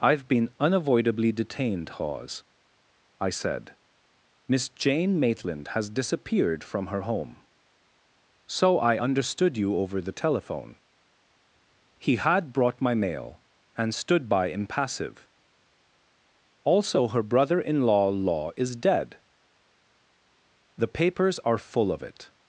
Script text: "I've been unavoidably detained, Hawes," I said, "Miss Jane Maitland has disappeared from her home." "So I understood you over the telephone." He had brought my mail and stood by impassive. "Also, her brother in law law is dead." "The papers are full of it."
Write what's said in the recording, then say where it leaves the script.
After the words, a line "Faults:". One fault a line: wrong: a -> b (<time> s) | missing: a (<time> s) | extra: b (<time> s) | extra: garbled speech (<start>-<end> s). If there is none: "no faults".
"I've been unavoidably detained, Hawes," I said, "Miss Jane Maitland has disappeared from her home." "So I understood you over the telephone." He had brought my mail and stood by impassive. "Also, her brother in law law is dead." "The papers are full of it."
Faults:
no faults